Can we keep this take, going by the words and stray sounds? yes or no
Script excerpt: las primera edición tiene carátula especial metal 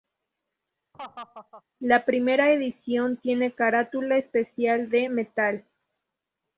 no